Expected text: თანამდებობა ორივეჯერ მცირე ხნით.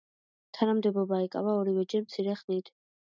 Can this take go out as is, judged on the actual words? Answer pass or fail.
fail